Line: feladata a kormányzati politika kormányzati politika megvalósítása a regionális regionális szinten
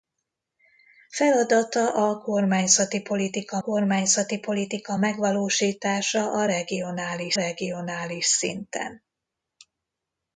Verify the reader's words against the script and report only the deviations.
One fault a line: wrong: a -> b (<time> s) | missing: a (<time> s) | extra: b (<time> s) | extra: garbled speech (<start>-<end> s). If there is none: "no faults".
no faults